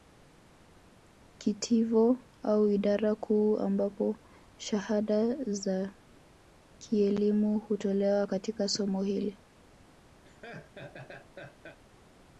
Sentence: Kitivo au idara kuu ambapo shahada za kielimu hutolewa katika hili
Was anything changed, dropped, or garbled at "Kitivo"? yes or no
no